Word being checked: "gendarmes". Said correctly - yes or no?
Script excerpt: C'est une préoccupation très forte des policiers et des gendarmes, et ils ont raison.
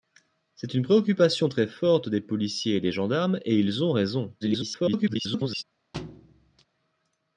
yes